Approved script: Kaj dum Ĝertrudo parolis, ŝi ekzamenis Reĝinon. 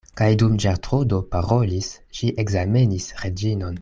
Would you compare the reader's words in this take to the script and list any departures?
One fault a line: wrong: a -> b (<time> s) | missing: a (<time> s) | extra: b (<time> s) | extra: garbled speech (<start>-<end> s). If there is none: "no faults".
no faults